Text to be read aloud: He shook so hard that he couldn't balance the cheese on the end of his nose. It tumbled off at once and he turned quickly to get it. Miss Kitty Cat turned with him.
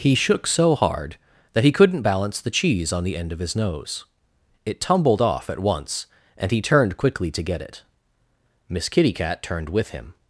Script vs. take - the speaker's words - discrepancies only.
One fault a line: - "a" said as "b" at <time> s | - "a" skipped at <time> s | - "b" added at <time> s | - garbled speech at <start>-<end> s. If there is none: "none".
none